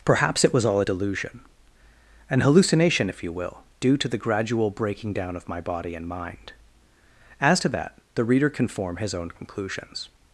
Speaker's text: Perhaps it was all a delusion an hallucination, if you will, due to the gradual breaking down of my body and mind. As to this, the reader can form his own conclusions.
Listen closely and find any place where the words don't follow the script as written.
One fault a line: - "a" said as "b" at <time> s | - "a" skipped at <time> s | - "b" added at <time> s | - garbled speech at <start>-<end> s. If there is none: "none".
- "this" said as "that" at 7.7 s